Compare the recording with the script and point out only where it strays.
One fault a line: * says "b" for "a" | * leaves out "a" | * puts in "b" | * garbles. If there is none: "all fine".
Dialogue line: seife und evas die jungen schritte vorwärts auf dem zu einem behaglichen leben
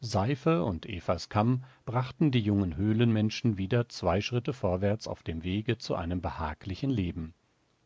* puts in "kamm brachten"
* puts in "höhlenmenschen wieder zwei"
* puts in "wege"